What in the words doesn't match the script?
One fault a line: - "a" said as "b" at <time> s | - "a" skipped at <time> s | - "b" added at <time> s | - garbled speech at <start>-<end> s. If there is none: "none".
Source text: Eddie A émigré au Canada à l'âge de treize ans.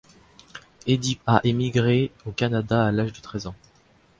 none